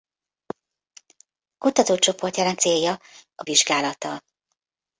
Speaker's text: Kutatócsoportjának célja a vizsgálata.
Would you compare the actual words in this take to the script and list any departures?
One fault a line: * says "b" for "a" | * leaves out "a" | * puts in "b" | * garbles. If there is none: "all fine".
all fine